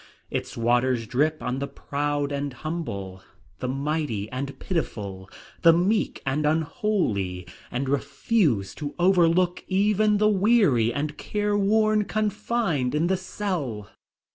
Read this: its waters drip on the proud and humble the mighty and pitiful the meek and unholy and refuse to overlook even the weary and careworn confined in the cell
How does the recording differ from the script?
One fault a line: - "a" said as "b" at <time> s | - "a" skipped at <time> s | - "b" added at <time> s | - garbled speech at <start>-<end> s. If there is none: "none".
none